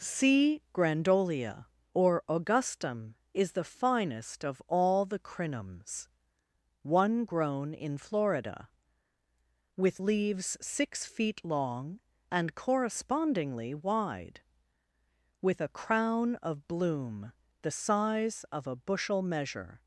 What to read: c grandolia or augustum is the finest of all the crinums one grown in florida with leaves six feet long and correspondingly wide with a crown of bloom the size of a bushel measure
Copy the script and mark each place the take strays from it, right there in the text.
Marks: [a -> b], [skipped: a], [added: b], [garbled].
c grandolia or augustum is the finest of all the crinums one grown in florida with leaves six feet long and correspondingly wide with a crown of bloom the size of a bushel measure